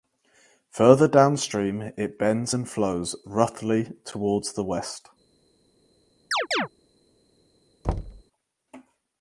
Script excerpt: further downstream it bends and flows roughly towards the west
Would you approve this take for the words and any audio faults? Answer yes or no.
no